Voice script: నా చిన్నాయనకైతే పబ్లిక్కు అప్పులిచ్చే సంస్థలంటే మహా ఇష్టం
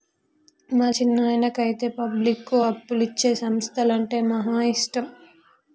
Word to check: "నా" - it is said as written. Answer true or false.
false